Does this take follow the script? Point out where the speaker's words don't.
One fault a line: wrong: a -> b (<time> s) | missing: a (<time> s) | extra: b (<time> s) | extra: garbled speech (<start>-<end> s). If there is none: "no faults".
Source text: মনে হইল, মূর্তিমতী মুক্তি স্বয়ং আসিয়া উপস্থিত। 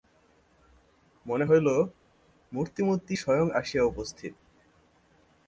missing: মুক্তি (3.1 s)